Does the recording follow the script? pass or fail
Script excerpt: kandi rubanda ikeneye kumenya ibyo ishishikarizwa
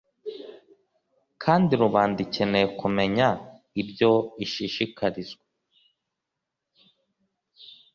pass